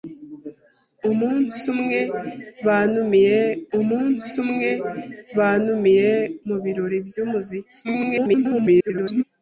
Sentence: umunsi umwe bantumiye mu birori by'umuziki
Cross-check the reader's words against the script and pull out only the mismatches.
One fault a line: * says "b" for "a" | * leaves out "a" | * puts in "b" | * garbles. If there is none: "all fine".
* puts in "umunsi umwe bantumiye"
* garbles